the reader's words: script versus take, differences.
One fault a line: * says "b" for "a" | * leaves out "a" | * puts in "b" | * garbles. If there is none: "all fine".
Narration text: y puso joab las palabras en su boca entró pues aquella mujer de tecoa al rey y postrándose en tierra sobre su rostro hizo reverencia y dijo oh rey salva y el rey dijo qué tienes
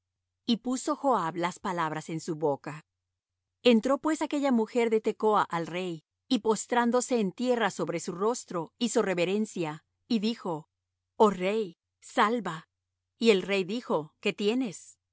all fine